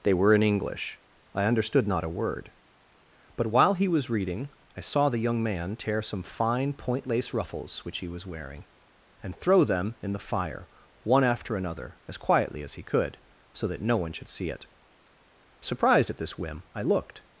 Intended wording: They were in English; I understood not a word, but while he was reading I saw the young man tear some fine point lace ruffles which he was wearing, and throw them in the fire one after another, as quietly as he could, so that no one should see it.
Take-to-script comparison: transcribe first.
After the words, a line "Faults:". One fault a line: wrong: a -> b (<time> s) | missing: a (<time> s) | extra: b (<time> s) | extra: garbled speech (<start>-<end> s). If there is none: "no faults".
They were in English; I understood not a word, but while he was reading I saw the young man tear some fine point lace ruffles which he was wearing, and throw them in the fire one after another, as quietly as he could, so that no one should see it. Surprised at this whim, I looked
Faults:
extra: Surprised at this whim I looked (15.6 s)